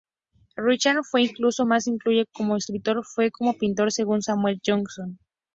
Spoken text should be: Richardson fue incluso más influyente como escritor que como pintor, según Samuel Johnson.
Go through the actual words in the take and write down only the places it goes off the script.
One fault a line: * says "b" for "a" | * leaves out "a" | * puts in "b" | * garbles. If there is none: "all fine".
all fine